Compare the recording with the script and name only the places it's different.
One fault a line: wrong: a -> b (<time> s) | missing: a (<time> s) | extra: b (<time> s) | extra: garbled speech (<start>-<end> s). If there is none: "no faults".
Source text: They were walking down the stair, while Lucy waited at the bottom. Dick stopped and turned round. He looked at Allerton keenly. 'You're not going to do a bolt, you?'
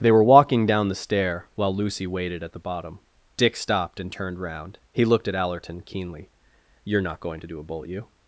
no faults